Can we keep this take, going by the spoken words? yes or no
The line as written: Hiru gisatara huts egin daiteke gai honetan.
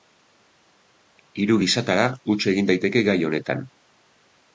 yes